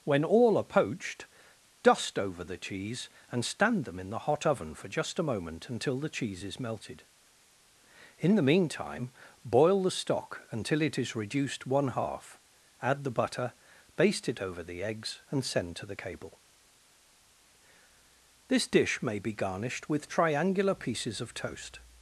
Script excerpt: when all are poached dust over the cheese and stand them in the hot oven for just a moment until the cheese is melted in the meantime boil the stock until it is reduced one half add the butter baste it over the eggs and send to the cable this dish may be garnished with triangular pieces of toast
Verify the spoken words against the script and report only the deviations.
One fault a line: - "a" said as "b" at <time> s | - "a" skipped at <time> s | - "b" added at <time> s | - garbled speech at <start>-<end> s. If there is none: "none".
none